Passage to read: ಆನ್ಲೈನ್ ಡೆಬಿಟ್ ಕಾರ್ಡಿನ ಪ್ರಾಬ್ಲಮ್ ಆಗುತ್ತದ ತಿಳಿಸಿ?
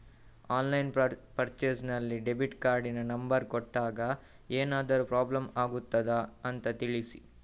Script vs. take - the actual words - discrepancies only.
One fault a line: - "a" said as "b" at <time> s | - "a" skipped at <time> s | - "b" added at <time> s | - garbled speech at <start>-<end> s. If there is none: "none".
- "ಪರ್ಚೇಸ್ ನಲ್ಲಿ" added at 1.4 s
- "ನಂಬರ್ ಕೊಟ್ಟಾಗ ಏನಾದರೂ" added at 3.1 s
- "ಅಂತ" added at 6.4 s